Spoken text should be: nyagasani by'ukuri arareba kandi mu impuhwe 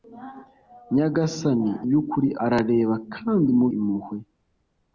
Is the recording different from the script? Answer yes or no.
no